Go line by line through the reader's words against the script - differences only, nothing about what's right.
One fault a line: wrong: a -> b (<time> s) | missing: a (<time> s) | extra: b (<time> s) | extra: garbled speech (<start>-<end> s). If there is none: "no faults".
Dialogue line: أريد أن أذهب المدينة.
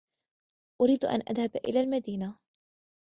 extra: إلى (1.6 s)